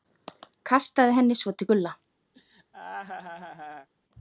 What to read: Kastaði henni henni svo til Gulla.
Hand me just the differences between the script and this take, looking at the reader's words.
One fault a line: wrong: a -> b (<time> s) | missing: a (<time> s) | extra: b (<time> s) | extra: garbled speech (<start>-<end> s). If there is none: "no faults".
missing: henni (1.4 s)